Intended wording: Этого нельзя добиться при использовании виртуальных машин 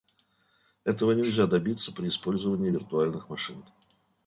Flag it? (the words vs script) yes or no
no